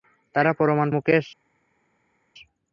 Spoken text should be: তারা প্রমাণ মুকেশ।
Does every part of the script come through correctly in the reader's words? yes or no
yes